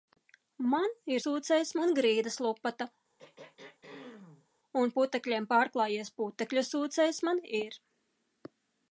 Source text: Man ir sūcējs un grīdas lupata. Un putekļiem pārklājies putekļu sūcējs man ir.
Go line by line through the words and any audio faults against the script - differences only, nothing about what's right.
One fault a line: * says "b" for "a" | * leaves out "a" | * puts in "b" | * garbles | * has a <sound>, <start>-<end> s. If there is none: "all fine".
* has a throat clearing, 3.2-4.5 s